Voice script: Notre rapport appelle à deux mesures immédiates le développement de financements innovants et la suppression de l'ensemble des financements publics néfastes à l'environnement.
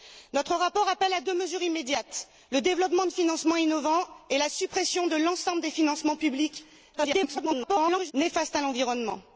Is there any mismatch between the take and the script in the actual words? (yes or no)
yes